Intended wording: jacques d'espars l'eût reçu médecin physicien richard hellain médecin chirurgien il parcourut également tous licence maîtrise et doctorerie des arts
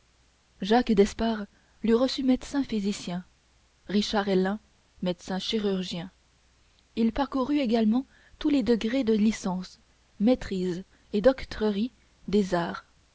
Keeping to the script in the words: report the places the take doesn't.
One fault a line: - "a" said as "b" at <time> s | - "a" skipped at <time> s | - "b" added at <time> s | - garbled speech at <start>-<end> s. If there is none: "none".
- "les degrés de" added at 8.5 s